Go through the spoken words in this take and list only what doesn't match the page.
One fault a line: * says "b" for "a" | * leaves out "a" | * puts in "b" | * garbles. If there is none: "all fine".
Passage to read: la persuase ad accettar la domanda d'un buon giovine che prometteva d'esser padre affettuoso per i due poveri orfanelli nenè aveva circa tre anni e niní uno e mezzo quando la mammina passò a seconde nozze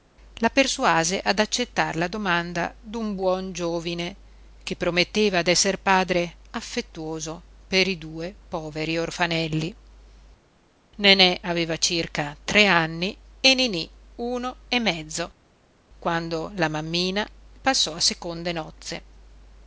all fine